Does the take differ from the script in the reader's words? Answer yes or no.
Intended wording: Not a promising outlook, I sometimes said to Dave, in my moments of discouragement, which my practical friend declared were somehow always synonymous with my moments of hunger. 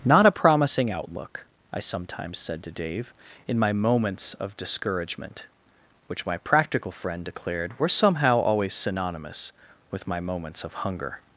no